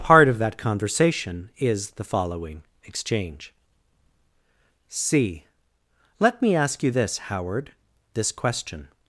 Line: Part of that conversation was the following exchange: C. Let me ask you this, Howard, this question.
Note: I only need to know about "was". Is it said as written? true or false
false